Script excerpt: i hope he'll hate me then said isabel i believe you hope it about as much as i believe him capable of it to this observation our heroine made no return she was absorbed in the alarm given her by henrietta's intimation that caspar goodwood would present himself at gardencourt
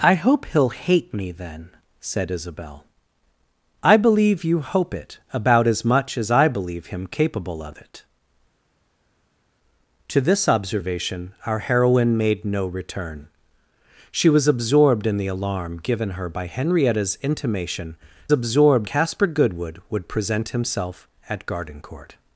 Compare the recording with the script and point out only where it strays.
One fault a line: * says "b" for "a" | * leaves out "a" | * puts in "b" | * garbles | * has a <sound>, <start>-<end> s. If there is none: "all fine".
* says "absorbed" for "that"